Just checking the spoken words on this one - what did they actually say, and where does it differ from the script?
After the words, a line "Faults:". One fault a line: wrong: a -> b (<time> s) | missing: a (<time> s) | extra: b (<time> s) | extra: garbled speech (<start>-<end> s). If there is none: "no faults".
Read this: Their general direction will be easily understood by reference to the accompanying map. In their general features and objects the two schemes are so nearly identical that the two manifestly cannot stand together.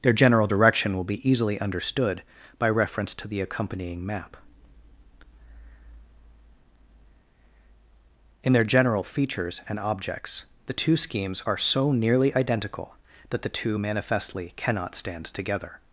Their general direction will be easily understood by reference to the accompanying map. In their general features and objects the two schemes are so nearly identical that the two manifestly cannot stand together.
Faults:
no faults